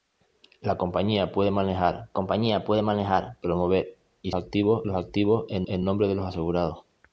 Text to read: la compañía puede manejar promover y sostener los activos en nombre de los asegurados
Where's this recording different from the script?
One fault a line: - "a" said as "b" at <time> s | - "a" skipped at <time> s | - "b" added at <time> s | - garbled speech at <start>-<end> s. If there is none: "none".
- "compañía puede manejar" added at 2.1 s
- "sostener" said as "activos" at 4.3 s
- "en" added at 5.7 s